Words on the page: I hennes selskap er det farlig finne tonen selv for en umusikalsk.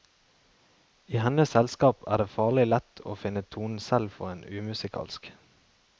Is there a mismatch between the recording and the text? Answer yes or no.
yes